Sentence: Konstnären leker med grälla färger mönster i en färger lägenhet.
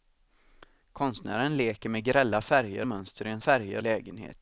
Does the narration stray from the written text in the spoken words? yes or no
no